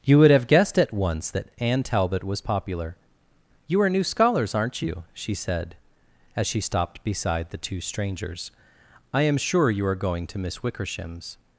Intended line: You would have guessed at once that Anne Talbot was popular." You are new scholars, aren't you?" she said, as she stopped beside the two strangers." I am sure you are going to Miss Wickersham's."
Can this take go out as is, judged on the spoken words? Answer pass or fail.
pass